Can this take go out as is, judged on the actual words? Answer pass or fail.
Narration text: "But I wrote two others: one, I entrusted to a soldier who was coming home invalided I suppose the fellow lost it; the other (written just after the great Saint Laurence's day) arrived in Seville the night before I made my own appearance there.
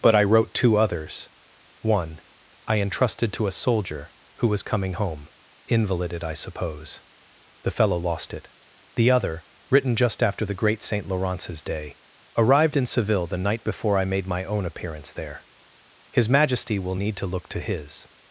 fail